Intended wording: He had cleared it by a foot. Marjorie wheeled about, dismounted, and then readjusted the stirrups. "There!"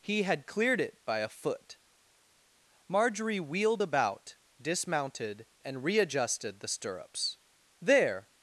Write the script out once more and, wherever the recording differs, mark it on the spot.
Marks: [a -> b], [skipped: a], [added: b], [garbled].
He had cleared it by a foot. Marjorie wheeled about, dismounted, and [skipped: then] readjusted the stirrups. "There!"